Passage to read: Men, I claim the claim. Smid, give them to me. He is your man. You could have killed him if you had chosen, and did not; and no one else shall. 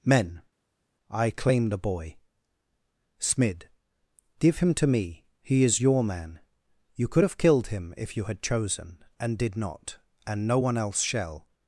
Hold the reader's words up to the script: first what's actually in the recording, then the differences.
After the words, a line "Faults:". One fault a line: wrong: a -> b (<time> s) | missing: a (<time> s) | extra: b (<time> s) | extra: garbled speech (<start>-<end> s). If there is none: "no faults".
Men, I claim the boy. Smid, give him to me. He is your man. You could have killed him if you had chosen, and did not; and no one else shall.
Faults:
wrong: claim -> boy (1.8 s)
wrong: them -> him (4.6 s)